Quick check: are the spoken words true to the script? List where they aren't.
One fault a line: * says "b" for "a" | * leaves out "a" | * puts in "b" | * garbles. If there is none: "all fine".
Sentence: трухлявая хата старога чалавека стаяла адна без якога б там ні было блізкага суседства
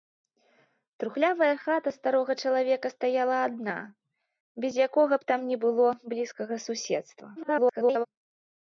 * garbles